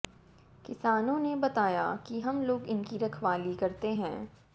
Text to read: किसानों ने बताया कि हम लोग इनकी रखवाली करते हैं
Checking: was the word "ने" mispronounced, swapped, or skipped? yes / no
no